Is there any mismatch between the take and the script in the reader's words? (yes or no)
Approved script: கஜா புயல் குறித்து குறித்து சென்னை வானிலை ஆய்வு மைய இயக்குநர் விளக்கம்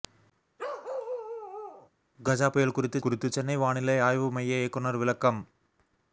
no